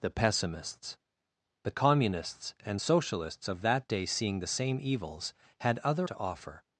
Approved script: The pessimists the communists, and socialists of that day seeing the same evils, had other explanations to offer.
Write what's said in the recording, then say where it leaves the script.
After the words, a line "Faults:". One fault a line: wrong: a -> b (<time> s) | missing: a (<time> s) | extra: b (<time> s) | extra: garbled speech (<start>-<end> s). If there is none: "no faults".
The pessimists the communists, and socialists of that day seeing the same evils, had other to offer.
Faults:
missing: explanations (6.1 s)